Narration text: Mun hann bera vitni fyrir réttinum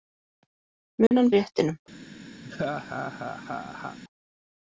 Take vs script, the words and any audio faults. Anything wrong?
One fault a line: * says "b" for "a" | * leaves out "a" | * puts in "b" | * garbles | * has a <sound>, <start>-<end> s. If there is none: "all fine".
* has a dropout, 1.1-1.1 s
* leaves out "bera vitni fyrir"
* has a laugh, 2.4-4.0 s